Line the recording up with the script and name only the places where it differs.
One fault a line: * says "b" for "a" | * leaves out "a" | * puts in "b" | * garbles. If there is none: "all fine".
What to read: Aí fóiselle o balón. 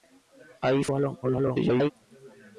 * leaves out "fóiselle"
* garbles